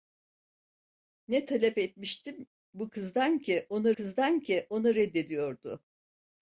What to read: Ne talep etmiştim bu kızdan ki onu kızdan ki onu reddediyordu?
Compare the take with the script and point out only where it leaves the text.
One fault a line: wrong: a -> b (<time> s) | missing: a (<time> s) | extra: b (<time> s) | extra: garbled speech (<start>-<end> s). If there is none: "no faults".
no faults